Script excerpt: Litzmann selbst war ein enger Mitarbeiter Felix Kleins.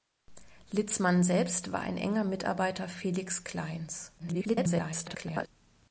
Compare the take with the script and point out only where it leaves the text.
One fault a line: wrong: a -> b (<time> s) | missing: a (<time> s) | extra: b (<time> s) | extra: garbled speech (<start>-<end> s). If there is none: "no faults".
extra: garbled speech (4.2-5.5 s)